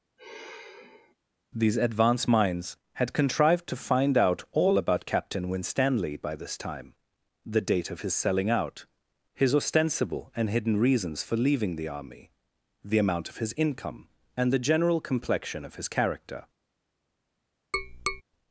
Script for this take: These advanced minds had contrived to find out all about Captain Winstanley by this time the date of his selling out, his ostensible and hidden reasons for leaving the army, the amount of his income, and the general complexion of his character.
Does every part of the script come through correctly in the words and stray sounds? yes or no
no